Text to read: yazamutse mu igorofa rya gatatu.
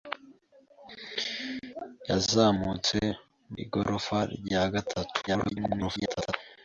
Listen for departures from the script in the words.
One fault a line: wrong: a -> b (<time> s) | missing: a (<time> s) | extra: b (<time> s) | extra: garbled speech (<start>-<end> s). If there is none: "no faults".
missing: mu (3.0 s)
extra: garbled speech (5.3-6.3 s)